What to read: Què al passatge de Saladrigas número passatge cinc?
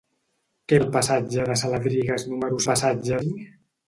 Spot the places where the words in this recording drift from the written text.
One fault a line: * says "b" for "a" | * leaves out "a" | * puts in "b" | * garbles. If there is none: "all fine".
all fine